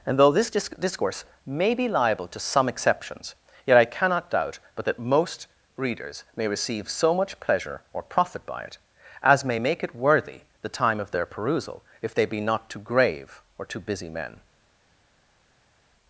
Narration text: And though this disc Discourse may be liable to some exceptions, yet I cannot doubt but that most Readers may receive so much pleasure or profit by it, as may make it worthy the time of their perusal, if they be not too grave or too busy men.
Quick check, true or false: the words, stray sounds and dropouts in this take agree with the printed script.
true